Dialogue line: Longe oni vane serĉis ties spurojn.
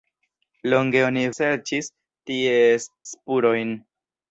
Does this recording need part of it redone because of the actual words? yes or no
yes